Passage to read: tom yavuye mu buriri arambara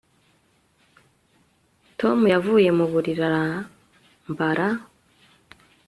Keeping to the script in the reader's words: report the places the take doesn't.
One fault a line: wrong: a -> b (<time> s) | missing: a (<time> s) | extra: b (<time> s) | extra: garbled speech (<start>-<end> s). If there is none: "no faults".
no faults